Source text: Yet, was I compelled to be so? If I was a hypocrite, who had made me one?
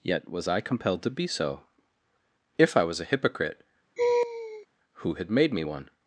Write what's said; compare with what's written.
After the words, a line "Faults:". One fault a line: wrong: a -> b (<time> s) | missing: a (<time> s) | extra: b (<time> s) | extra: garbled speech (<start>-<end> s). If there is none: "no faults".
Yet, was I compelled to be so? If I was a hypocrite, who had made me one?
Faults:
no faults